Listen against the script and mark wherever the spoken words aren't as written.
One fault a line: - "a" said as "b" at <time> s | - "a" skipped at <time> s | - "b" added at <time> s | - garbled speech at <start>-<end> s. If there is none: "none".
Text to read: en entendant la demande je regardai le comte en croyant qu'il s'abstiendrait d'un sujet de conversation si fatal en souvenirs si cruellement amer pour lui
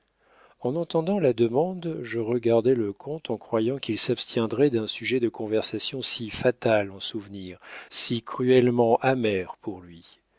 none